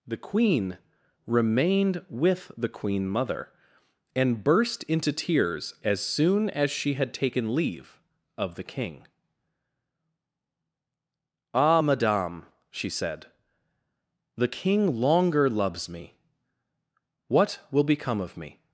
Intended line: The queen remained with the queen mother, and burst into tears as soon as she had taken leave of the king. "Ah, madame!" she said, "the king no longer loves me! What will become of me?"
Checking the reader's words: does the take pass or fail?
fail